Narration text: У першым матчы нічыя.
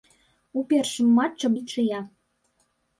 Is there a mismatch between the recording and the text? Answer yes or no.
no